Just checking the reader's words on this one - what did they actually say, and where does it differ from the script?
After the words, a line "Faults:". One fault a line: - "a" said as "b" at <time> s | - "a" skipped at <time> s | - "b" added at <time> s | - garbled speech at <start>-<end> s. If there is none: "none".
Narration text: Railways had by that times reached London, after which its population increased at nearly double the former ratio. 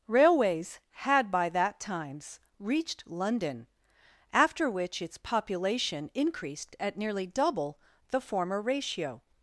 Railways had by that times reached London, after which its population increased at nearly double the former ratio.
Faults:
none